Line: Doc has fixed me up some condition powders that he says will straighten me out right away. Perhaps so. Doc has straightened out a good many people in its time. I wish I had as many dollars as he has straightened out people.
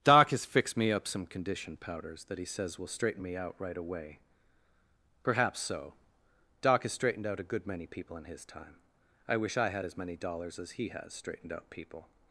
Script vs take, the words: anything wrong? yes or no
yes